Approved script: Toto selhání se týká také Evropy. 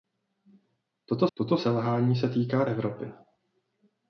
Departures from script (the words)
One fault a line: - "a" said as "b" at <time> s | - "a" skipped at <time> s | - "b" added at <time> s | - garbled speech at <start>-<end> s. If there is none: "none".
- "toto" added at 1.3 s
- "také" skipped at 2.6 s